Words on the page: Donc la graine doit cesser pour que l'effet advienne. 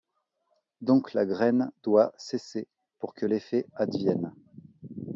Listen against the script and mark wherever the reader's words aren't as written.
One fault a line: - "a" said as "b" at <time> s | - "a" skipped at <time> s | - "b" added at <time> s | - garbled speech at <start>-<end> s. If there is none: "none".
none